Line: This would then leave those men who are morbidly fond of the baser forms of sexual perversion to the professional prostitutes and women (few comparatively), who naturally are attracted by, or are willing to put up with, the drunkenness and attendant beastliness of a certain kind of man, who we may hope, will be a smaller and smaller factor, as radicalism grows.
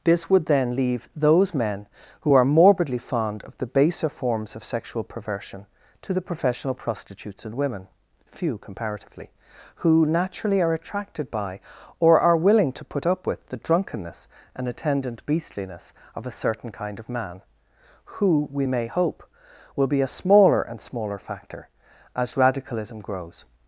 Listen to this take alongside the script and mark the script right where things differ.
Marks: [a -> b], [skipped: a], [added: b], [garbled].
This would then leave those men who are morbidly fond of the baser forms of sexual perversion to the professional prostitutes and women (few comparatively), who naturally are attracted by, or are willing to put up with, the drunkenness and attendant beastliness of a certain kind of man, who we may hope, will be a smaller and smaller factor, as radicalism grows.